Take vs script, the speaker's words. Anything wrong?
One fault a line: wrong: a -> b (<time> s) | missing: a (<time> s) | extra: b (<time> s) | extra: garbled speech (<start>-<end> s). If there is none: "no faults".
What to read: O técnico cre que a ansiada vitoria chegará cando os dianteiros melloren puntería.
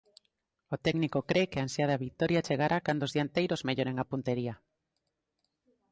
extra: a (4.0 s)